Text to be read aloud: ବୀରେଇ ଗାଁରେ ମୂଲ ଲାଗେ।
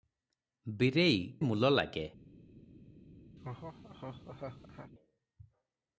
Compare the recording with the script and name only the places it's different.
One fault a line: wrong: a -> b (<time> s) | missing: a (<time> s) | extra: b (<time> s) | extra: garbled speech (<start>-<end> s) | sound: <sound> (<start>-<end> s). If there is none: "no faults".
missing: ଗାଁରେ (1.2 s)
sound: laugh (3.4-4.9 s)